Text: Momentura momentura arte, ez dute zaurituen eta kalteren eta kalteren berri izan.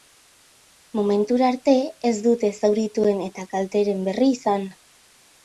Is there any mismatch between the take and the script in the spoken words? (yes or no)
yes